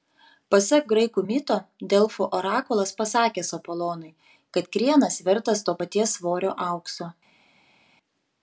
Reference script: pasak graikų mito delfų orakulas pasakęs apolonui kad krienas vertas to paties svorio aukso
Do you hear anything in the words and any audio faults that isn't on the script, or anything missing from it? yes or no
no